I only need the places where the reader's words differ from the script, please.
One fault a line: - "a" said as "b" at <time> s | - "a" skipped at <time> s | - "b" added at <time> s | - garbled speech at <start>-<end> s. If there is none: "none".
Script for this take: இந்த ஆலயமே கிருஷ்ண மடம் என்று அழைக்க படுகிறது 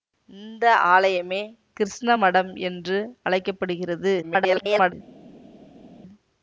- garbled speech at 4.2-4.9 s